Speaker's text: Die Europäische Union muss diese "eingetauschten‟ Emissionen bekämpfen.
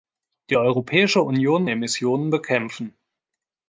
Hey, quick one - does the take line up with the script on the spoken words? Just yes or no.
no